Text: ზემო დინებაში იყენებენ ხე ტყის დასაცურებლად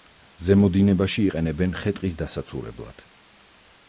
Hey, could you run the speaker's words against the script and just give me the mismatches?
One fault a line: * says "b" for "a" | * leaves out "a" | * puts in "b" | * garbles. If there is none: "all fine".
all fine